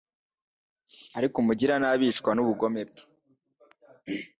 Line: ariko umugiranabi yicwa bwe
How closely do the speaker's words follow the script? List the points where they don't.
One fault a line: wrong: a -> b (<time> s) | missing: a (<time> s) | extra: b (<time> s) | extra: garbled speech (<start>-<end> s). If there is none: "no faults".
extra: n'ubugome (2.3 s)